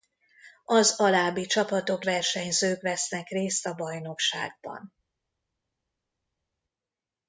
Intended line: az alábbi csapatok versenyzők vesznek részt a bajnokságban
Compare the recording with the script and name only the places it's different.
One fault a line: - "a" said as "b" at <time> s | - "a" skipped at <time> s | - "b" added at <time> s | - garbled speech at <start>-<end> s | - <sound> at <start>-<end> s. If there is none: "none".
none